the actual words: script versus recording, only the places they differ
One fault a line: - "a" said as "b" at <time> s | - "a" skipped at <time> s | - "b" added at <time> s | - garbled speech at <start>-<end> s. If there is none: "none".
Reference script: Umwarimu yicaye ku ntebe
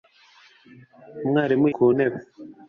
- "yicaye" skipped at 1.6 s